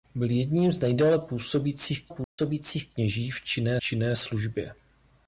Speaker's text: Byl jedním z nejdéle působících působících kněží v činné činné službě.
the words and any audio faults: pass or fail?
fail